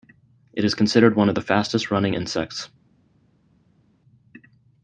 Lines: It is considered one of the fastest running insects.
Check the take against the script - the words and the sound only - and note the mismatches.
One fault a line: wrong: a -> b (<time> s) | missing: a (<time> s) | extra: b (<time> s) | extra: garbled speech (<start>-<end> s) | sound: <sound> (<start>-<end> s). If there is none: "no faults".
no faults